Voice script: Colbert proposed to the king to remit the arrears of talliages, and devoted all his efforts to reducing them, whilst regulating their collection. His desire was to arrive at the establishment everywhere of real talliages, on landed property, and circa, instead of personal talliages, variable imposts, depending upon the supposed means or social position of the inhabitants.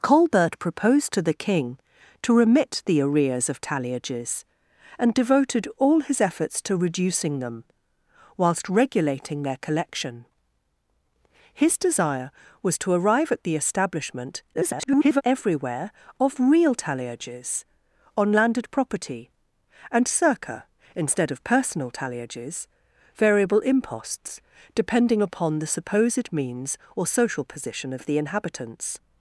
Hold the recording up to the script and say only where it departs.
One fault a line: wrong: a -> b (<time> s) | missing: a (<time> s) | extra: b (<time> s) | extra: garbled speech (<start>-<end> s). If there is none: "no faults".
extra: garbled speech (14.5-15.2 s)